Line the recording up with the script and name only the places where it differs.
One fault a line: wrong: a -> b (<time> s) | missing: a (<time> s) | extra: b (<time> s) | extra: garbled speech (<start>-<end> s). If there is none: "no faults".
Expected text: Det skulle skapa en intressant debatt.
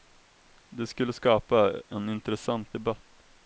no faults